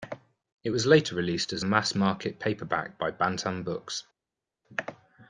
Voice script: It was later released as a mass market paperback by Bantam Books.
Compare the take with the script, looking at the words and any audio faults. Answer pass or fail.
pass